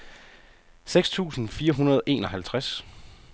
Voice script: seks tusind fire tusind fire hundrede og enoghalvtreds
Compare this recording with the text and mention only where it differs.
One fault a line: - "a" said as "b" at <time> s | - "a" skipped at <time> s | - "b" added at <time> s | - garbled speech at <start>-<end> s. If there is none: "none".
- "tusind fire" skipped at 1.7 s